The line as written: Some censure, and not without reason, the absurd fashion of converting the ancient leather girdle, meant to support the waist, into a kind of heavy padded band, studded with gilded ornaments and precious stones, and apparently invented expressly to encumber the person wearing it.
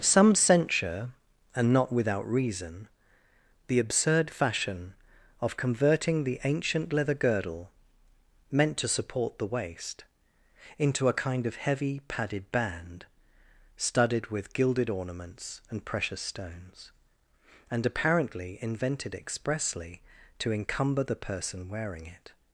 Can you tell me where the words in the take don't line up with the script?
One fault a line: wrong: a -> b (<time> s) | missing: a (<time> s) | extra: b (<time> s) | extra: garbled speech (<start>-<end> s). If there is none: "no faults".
no faults